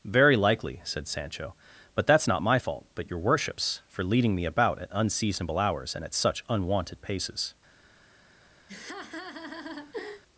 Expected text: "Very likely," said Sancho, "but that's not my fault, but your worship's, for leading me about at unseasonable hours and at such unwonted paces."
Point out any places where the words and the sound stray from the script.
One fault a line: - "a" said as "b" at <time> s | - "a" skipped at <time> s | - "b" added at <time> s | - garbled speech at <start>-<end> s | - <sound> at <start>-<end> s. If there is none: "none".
- laugh at 8.7-10.2 s